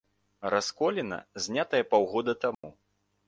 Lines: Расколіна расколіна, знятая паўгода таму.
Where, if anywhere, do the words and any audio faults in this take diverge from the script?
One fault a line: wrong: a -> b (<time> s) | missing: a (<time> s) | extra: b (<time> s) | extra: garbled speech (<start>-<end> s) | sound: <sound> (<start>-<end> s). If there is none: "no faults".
missing: расколіна (1.2 s)
sound: dropout (2.5-2.6 s)